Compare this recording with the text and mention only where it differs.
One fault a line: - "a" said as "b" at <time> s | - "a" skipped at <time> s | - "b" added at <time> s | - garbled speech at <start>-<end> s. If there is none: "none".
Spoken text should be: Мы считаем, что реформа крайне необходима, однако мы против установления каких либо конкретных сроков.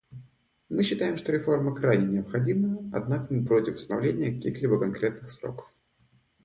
none